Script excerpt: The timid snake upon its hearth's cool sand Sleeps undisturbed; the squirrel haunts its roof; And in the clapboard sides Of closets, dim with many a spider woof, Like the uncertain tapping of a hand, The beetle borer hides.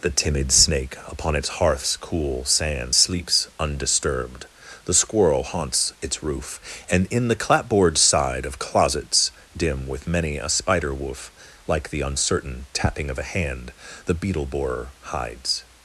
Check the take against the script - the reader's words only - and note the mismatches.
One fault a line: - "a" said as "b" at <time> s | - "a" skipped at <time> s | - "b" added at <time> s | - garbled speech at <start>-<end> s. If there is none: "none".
- "sides" said as "side" at 8.0 s